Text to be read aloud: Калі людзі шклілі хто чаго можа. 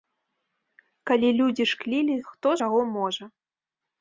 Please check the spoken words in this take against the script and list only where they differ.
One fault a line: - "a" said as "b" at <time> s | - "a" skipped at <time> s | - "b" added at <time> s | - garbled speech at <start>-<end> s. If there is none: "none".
none